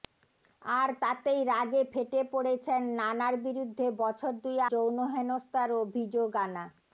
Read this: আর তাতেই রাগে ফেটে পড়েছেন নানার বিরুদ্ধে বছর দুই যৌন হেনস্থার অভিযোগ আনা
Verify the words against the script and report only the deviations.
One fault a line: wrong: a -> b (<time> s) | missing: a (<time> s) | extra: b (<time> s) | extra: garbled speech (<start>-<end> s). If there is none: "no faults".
no faults